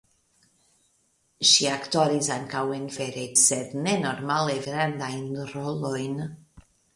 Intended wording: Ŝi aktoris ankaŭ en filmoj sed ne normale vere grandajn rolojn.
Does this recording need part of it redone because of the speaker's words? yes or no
yes